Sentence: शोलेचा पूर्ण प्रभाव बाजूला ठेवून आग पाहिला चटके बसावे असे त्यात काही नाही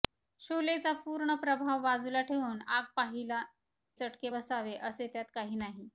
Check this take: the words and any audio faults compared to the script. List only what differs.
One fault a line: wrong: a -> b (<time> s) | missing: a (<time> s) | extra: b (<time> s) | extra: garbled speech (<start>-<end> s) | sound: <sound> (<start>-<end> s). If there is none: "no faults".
no faults